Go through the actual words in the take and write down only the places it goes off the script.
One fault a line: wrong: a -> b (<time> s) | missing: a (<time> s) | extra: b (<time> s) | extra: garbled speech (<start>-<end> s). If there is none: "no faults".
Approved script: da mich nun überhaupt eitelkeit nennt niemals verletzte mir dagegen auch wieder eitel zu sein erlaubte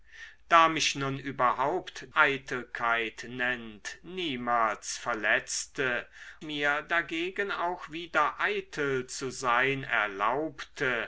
no faults